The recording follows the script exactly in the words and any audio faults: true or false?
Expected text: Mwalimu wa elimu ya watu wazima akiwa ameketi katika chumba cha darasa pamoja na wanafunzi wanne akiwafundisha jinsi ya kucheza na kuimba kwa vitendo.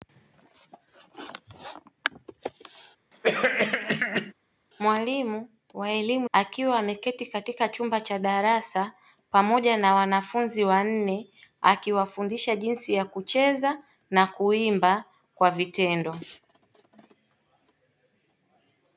false